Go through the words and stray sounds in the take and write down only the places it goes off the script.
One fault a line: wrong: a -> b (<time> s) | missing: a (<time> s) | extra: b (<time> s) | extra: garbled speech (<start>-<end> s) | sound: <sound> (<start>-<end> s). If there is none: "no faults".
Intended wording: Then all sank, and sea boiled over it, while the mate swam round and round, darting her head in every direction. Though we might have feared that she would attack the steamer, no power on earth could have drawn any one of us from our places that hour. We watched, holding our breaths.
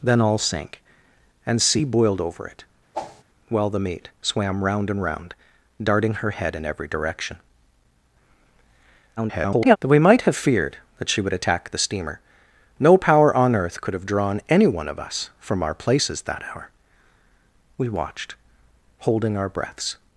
sound: whoosh (2.9-3.2 s)
extra: garbled speech (9.2-9.8 s)